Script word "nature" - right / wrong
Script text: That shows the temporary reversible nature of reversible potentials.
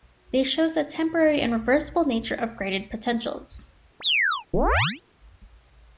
right